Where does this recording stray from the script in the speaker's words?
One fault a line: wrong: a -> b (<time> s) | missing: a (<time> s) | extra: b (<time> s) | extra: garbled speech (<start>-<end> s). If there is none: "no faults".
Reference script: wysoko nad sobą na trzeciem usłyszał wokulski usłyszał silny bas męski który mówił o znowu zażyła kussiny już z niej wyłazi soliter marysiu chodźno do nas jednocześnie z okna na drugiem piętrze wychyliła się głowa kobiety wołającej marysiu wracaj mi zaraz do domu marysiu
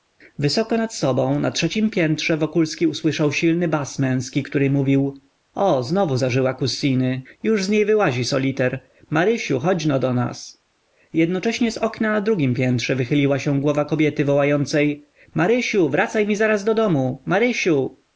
wrong: usłyszał -> piętrze (1.9 s)